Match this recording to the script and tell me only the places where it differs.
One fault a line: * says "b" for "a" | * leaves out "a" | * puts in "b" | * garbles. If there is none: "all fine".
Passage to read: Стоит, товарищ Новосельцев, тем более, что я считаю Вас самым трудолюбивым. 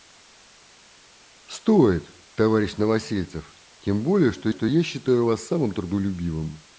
* puts in "что"